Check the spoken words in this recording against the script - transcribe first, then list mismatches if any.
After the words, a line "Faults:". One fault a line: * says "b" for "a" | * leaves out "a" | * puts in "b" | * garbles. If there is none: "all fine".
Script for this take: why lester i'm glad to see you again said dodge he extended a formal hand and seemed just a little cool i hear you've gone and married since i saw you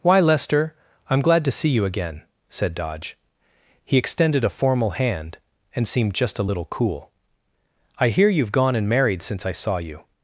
why lester i'm glad to see you again said dodge he extended a formal hand and seemed just a little cool i hear you've gone and married since i saw you
Faults:
all fine